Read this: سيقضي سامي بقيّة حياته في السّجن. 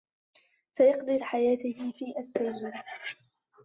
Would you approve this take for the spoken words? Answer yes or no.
no